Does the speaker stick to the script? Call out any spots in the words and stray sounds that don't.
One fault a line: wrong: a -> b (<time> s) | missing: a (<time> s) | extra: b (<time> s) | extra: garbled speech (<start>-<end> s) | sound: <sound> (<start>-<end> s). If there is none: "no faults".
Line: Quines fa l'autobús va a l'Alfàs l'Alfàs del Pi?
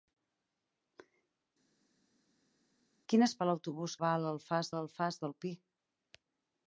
no faults